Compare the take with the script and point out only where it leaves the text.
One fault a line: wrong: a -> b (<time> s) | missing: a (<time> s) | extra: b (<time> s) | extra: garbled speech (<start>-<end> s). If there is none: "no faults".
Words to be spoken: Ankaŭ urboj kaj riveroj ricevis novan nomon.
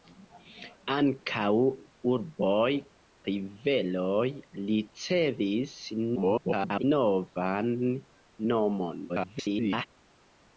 missing: kaj (2.7 s)
extra: garbled speech (6.2-6.8 s)
extra: garbled speech (9.1-9.9 s)